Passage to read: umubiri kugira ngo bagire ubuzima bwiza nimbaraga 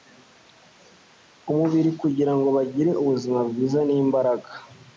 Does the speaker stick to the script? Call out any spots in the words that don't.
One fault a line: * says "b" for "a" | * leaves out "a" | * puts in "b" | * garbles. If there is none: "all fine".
all fine